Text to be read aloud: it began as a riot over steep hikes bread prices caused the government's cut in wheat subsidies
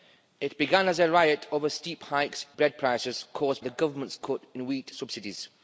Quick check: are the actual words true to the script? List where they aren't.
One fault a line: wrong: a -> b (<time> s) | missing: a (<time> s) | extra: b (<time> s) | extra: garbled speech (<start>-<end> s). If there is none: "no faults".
no faults